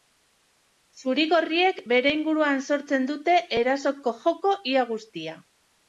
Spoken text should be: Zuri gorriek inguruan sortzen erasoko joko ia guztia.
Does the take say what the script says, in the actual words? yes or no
no